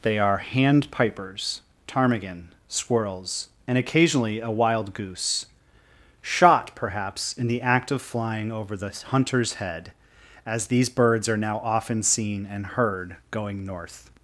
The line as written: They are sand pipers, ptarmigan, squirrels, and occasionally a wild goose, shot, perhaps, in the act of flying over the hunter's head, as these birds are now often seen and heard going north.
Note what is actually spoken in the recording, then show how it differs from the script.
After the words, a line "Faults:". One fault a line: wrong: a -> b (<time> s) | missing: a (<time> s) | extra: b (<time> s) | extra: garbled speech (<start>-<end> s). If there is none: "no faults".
They are hand pipers, ptarmigan, squirrels, and occasionally a wild goose, shot, perhaps, in the act of flying over the hunter's head, as these birds are now often seen and heard going north.
Faults:
wrong: sand -> hand (0.4 s)